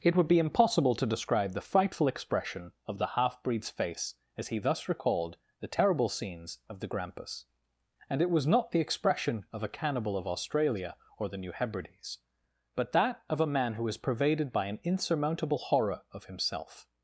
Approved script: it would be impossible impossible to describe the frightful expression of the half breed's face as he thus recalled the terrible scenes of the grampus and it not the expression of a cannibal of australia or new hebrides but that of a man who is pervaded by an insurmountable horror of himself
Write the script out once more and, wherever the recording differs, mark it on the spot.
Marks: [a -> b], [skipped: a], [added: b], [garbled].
it would be impossible [skipped: impossible] to describe the frightful expression of the half breed's face as he thus recalled the terrible scenes of the grampus and it [added: was] not the expression of a cannibal of australia or [added: the] new hebrides but that of a man who is pervaded by an insurmountable horror of himself